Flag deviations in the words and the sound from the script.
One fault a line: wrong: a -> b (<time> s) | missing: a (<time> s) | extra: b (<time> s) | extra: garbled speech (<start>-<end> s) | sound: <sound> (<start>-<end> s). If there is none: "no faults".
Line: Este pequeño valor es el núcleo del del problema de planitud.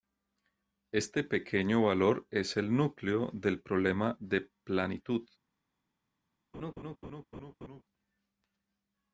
missing: del (3.6 s)
sound: laugh (6.5-7.8 s)